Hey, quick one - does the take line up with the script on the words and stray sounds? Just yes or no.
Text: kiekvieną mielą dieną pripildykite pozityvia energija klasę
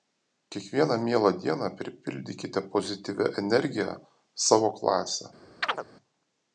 no